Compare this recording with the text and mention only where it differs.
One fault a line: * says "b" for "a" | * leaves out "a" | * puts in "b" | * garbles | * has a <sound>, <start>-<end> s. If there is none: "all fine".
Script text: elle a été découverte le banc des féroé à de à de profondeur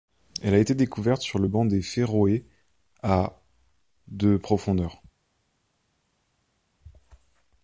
* puts in "sur"
* leaves out "à de"